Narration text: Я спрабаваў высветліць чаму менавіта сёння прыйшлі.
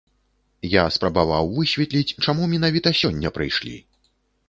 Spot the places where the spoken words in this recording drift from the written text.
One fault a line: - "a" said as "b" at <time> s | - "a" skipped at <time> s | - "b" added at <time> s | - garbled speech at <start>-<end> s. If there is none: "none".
none